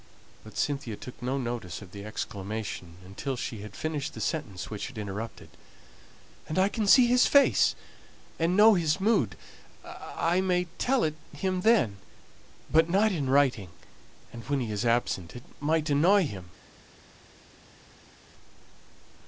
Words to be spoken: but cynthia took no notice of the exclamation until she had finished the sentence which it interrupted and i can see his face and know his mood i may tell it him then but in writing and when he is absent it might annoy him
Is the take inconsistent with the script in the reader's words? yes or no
yes